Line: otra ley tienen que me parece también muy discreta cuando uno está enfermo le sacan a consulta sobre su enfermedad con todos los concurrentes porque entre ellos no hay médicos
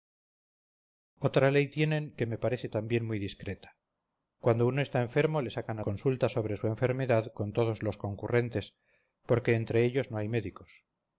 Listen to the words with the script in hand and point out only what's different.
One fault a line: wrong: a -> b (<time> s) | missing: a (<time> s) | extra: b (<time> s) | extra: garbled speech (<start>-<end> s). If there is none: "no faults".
no faults